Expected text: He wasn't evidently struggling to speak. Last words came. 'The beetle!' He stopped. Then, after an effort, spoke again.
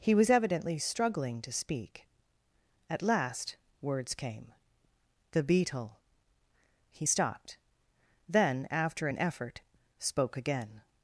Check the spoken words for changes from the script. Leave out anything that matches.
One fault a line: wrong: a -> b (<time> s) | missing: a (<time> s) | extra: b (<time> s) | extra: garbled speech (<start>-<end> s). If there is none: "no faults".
wrong: wasn't -> was (0.1 s)
extra: At (2.9 s)